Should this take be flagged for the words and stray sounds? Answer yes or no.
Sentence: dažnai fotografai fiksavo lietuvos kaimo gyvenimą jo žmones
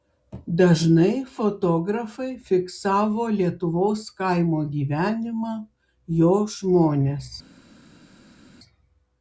no